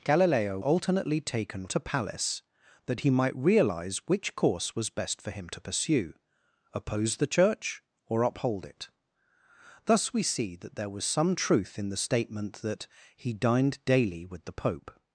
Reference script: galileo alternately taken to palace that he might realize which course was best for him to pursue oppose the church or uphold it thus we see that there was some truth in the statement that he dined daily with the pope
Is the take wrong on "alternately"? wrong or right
right